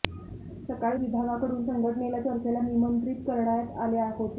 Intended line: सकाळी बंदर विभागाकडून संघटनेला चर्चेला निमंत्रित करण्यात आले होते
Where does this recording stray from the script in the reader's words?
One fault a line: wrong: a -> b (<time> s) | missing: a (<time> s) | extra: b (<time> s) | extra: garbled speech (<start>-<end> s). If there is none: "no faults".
missing: बंदर (1.0 s)